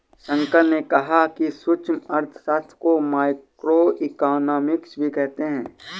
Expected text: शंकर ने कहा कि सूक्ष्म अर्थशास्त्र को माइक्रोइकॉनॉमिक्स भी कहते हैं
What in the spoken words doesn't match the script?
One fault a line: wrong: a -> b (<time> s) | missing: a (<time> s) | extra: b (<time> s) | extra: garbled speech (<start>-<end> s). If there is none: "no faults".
no faults